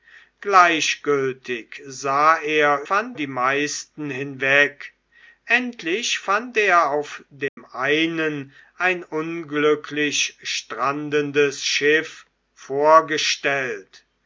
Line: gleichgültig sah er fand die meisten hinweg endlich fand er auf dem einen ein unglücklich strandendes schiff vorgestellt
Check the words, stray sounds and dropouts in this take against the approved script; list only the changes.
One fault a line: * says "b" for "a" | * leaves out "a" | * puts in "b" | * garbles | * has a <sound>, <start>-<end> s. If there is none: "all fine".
* has a dropout, 7.5-7.6 s